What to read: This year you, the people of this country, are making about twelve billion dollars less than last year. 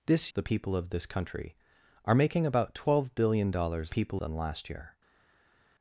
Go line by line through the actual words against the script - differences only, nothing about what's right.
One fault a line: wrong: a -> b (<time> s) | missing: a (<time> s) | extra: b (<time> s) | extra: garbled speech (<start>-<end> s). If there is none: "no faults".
missing: year you (0.3 s)
wrong: less -> people (3.9 s)